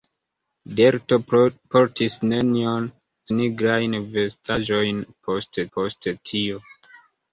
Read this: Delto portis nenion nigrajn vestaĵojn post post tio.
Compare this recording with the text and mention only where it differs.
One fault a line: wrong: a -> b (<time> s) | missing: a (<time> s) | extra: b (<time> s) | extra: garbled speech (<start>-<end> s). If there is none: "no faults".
no faults